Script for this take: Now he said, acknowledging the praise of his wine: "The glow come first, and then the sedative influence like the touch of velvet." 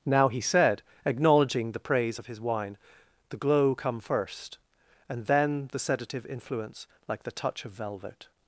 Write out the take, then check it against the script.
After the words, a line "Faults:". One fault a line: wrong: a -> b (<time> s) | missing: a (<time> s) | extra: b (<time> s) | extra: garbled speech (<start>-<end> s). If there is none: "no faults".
Now he said, acknowledging the praise of his wine: "The glow come first, and then the sedative influence like the touch of velvet."
Faults:
no faults